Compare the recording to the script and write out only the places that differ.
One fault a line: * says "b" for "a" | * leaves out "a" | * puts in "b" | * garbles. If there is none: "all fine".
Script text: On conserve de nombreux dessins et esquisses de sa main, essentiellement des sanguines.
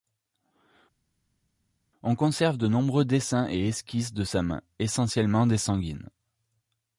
all fine